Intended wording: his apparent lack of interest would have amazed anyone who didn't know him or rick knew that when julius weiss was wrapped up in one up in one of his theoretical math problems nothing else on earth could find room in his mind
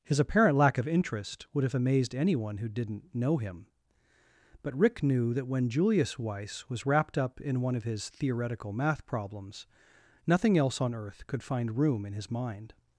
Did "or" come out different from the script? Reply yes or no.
yes